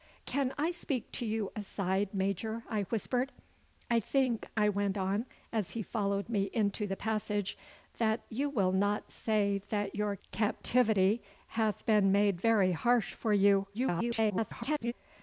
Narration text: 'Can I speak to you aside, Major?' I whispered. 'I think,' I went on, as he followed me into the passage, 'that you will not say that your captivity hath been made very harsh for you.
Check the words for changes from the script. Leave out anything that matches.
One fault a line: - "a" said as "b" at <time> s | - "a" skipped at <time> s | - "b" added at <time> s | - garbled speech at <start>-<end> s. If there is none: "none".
- garbled speech at 13.7-14.9 s